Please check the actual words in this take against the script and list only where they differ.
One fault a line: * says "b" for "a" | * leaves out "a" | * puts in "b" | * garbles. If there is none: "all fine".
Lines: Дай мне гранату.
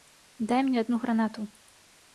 * puts in "адну"